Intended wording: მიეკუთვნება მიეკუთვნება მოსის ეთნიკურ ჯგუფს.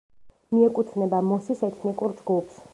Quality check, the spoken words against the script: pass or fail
fail